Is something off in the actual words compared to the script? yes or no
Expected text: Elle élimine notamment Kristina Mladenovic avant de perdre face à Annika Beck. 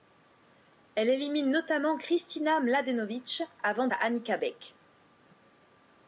yes